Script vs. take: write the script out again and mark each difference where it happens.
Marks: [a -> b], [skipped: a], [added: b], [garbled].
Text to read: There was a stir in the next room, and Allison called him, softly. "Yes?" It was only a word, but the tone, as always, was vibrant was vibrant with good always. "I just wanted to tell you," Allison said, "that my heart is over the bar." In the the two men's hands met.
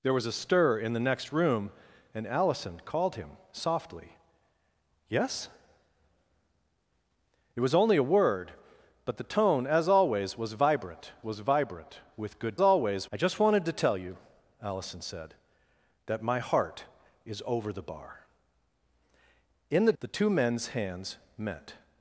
There was a stir in the next room, and Allison called him, softly. "Yes?" It was only a word, but the tone, as always, was vibrant was vibrant with good always. "I just wanted to tell you," Allison said, "that my heart is over the bar." In the the two men's hands met.